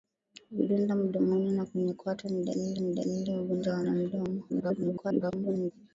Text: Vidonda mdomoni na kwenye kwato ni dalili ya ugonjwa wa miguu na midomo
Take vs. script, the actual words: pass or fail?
fail